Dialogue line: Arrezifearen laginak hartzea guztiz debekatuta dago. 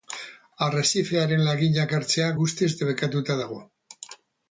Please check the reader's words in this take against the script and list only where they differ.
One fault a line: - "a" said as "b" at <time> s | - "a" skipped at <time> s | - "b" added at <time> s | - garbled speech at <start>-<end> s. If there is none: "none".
none